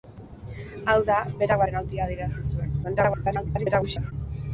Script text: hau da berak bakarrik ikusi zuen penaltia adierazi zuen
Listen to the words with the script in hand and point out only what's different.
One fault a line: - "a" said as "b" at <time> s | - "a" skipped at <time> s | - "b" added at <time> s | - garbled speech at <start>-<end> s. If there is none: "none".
- "bakarrik ikusi zuen" skipped at 1.6 s
- garbled speech at 2.8-4.1 s